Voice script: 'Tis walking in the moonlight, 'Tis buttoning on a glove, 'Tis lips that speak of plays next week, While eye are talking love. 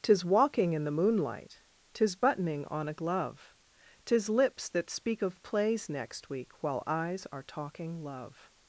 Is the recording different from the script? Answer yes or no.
yes